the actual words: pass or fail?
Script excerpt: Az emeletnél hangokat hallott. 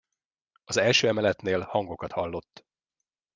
fail